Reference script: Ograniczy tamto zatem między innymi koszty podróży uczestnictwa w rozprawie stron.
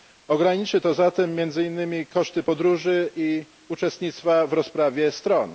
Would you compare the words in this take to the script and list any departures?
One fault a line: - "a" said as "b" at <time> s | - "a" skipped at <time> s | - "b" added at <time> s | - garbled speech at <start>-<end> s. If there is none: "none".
- "tamto" said as "to" at 0.8 s
- "i" added at 3.2 s